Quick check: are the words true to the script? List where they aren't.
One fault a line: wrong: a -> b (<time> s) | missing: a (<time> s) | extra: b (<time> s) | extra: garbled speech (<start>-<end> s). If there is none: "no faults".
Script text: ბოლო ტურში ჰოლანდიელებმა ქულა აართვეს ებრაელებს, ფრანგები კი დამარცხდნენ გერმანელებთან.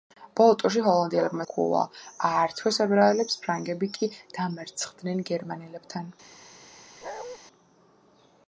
no faults